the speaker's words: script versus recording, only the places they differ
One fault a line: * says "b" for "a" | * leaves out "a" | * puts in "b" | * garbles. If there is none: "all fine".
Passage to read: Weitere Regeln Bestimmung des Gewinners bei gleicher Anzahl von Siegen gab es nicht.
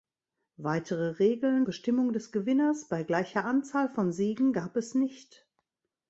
all fine